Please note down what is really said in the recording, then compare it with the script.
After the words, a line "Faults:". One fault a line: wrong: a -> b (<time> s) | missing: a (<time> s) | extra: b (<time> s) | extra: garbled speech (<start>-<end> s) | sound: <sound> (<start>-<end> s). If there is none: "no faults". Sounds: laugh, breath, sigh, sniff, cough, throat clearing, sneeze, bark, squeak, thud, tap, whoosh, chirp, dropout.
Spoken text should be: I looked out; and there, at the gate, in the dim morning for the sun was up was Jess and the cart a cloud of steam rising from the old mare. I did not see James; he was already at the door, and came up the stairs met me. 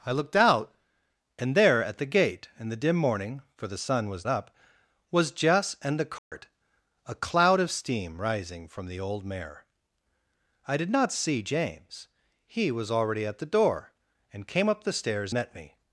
I looked out; and there, at the gate, in the dim morning for the sun was up was Jess and the cart a cloud of steam rising from the old mare. I did not see James; he was already at the door, and came up the stairs met me.
Faults:
sound: dropout (6.2-6.3 s)